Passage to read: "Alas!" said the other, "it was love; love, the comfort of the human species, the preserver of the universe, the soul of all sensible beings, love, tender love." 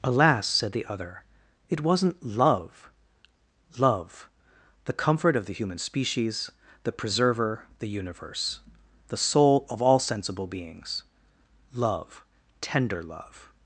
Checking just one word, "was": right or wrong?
wrong